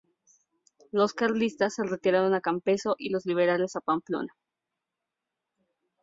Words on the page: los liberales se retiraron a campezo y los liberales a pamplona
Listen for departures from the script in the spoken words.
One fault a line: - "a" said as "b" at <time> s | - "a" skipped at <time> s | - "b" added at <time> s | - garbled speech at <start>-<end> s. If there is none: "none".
- "liberales" said as "carlistas" at 1.1 s